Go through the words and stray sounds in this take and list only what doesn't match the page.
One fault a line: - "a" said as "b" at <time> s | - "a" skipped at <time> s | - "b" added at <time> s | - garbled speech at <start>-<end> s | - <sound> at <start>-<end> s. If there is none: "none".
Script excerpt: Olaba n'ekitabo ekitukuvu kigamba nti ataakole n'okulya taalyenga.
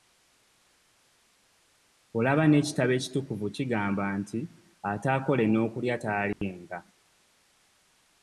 - dropout at 6.3-6.4 s